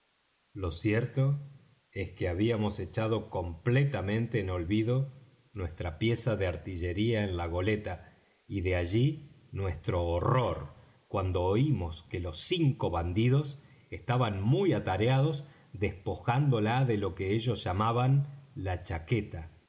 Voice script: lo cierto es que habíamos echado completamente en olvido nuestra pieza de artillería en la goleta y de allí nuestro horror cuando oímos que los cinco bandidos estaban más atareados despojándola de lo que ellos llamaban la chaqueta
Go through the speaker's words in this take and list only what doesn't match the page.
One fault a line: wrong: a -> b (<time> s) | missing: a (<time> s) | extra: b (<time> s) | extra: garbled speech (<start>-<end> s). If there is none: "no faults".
wrong: más -> muy (14.4 s)